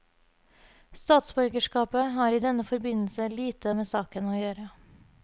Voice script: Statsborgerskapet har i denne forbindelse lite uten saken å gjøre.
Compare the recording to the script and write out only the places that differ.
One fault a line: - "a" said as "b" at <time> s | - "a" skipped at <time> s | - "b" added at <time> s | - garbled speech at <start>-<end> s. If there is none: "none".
- "uten" said as "med" at 3.7 s